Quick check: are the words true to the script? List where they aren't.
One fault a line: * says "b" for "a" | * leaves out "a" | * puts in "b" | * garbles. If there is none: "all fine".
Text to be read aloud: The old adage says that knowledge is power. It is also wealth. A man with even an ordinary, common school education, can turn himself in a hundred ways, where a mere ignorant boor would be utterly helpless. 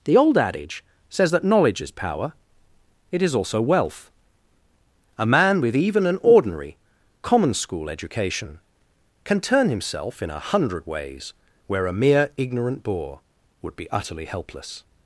all fine